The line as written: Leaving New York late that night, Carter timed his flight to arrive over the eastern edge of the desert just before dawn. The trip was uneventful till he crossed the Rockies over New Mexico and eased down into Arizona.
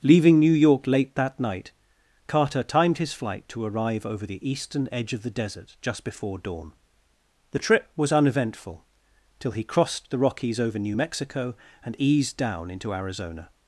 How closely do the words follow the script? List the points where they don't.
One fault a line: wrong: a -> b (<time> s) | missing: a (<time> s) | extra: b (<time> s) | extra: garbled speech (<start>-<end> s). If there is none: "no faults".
no faults